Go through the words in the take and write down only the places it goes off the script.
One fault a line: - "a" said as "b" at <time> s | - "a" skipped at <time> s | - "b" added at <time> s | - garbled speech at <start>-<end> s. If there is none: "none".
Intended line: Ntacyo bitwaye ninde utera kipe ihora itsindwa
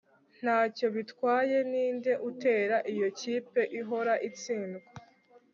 - "iyo" added at 2.9 s